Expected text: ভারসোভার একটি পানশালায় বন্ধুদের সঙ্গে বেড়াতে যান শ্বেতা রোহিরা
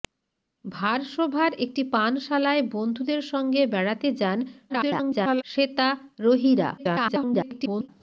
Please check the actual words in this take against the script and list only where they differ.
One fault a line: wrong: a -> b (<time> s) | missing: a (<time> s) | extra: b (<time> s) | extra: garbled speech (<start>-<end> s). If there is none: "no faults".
extra: garbled speech (4.7-5.4 s)
extra: garbled speech (6.8-7.9 s)